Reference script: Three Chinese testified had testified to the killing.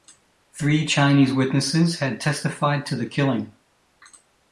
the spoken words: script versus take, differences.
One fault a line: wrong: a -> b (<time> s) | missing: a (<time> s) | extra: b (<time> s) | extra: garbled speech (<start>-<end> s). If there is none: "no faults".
wrong: testified -> witnesses (1.3 s)